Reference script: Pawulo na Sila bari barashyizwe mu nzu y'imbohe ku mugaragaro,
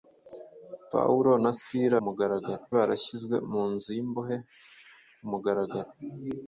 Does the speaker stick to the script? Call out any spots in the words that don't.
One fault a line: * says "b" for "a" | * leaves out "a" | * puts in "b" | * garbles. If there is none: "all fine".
* says "mugaragaro" for "bari"